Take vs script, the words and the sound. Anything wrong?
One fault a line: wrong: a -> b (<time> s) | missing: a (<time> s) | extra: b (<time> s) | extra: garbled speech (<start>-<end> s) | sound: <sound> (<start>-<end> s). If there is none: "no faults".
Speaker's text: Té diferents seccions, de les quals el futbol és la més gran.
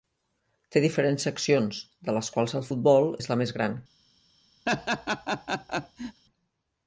sound: laugh (4.7-6.2 s)